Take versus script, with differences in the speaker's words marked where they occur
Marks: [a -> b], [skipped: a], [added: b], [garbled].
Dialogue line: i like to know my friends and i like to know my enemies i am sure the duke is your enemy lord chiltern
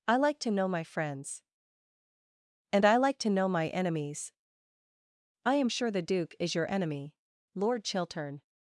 i like to know my friends and i like to know my enemies i am sure the duke is your enemy lord chiltern